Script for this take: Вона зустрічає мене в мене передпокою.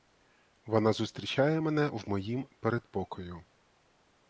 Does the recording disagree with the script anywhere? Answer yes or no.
yes